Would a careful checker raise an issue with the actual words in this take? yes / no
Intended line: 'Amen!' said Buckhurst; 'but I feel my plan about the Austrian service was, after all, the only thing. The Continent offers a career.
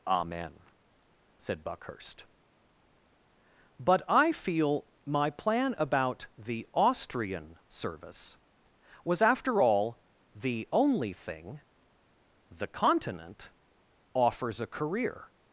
no